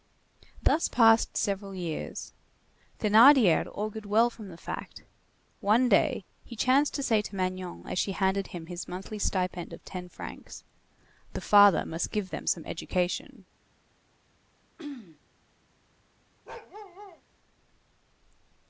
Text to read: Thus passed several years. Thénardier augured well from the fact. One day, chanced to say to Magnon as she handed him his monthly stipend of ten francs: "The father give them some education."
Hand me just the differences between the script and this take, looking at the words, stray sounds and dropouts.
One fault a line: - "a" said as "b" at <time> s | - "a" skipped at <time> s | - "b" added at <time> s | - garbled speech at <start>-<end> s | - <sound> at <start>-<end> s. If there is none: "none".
- "he" added at 6.4 s
- "must" added at 11.8 s
- throat clearing at 14.8-15.2 s
- bark at 16.5-17.2 s